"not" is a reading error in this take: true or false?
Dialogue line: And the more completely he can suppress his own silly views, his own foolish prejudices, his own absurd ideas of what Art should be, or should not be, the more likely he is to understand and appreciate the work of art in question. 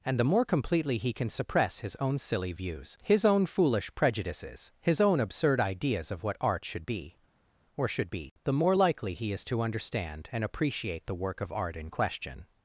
true